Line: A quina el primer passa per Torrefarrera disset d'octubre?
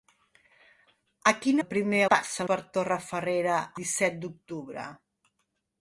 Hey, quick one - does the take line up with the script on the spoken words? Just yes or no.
yes